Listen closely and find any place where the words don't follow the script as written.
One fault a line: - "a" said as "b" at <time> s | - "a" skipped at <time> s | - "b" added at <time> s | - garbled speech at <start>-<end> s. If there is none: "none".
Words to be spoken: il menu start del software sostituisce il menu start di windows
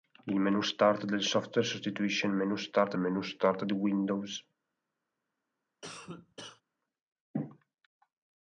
- "menu start" added at 3.0 s